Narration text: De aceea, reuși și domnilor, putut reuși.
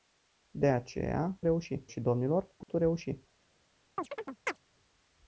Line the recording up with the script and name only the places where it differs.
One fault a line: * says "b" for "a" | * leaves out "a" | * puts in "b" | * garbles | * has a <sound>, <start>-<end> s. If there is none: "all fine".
* has a dropout, 2.6-2.7 s
* has a chirp, 4.0-4.6 s